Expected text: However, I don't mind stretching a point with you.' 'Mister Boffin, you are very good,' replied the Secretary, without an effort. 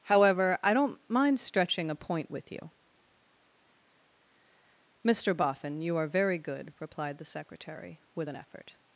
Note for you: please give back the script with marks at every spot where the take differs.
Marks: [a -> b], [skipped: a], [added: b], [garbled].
However, I don't mind stretching a point with you.' 'Mister Boffin, you are very good,' replied the Secretary, [without -> with] an effort.